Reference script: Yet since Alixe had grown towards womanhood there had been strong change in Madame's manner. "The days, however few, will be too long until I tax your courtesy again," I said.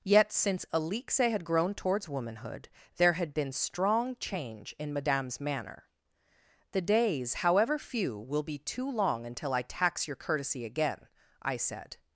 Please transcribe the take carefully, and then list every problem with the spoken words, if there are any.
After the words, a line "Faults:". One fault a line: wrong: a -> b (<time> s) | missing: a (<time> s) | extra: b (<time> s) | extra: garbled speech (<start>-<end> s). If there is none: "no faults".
Yet since Alixe had grown towards womanhood there had been strong change in Madame's manner. "The days, however few, will be too long until I tax your courtesy again," I said.
Faults:
no faults